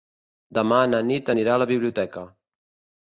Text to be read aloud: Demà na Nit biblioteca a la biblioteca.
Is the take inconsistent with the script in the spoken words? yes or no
yes